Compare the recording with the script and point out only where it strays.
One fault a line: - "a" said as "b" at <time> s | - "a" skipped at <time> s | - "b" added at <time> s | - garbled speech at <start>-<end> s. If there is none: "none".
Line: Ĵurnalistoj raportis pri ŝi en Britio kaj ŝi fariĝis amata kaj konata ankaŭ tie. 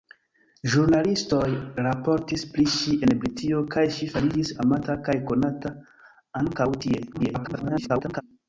- garbled speech at 7.1-8.2 s